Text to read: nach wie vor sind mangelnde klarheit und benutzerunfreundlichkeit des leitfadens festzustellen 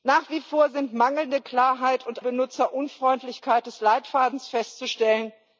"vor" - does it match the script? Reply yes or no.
yes